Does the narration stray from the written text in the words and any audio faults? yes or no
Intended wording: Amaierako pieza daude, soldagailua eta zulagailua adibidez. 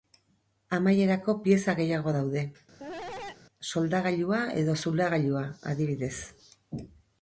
yes